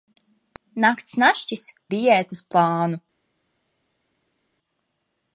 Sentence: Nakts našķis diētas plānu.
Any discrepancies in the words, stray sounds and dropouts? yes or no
no